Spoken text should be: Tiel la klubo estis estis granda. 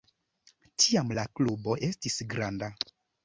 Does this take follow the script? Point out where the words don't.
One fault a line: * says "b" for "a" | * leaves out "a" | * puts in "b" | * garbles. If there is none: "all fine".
* says "Tiam" for "Tiel"
* leaves out "estis"